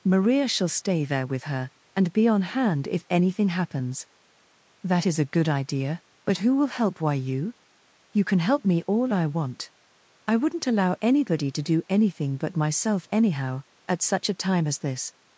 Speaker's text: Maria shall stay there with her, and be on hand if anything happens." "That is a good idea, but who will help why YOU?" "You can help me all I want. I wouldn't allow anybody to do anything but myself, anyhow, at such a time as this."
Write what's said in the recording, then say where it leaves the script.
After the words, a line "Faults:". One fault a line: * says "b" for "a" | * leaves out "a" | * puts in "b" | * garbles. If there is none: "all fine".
Maria shall stay there with her, and be on hand if anything happens." "That is a good idea, but who will help why YOU?" "You can help me all I want. I wouldn't allow anybody to do anything but myself, anyhow, at such a time as this."
Faults:
all fine